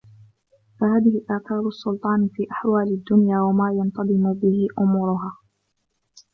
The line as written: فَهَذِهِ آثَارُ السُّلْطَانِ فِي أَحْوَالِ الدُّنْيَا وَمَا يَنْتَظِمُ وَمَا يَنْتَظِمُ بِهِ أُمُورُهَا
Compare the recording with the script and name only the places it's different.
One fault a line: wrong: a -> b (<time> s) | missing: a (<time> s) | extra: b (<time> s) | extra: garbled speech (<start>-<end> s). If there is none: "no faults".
missing: وَمَا يَنْتَظِمُ (4.3 s)